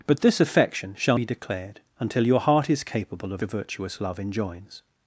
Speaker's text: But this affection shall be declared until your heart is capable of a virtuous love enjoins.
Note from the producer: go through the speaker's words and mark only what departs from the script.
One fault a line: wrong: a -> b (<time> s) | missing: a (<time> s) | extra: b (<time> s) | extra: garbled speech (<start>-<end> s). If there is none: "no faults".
no faults